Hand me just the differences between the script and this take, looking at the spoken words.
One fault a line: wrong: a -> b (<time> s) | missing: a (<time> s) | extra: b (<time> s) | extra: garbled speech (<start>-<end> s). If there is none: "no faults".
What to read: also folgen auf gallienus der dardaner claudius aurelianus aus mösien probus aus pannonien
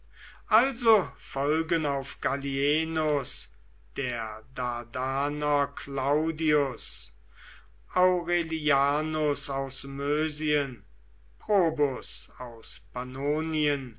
no faults